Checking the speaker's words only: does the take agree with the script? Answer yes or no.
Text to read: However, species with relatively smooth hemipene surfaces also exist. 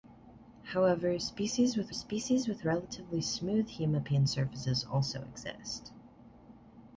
no